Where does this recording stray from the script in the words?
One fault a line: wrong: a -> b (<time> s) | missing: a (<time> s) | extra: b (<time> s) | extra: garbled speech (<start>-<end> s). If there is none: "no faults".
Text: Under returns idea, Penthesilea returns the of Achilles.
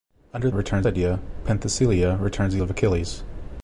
no faults